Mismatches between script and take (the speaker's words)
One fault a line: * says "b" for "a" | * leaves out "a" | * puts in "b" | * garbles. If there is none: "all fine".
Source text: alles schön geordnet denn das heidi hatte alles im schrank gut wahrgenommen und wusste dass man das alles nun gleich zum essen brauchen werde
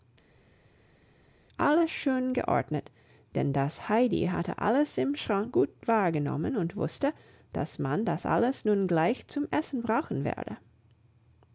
all fine